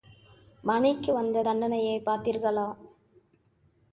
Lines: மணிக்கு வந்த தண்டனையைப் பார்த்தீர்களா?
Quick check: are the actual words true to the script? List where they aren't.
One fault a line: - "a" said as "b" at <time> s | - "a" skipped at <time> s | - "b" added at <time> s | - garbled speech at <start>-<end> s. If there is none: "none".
none